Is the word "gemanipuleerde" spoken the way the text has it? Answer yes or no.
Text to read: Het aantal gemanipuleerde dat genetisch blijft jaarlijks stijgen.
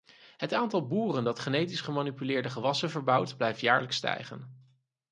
no